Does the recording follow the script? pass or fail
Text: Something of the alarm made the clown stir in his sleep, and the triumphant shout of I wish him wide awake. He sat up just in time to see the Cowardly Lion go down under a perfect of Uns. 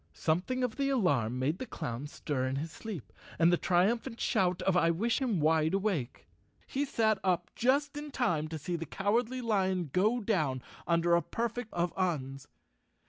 pass